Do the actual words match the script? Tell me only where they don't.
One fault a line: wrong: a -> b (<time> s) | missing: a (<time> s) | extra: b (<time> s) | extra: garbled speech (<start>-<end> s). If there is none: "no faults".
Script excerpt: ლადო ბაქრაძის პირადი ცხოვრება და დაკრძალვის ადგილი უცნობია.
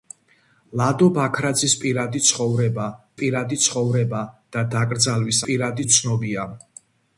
extra: პირადი ცხოვრება (3.2 s)
wrong: ადგილი -> პირადი (5.5 s)